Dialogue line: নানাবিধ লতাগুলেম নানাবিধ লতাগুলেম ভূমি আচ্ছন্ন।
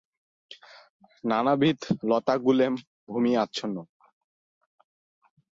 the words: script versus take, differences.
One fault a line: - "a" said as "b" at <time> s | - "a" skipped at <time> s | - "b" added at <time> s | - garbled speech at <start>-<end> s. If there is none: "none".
- "নানাবিধ লতাগুলেম" skipped at 2.7 s